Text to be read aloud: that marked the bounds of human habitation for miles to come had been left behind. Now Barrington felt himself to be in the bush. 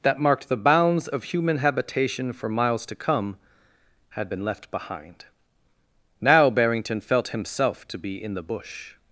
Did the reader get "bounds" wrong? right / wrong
right